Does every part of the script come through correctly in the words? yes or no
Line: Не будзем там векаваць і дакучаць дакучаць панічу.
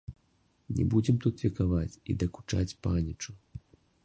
no